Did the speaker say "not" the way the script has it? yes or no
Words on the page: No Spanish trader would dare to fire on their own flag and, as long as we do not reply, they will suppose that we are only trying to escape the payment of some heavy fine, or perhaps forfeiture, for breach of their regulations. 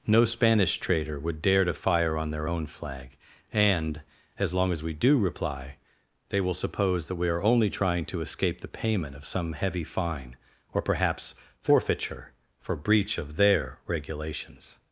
no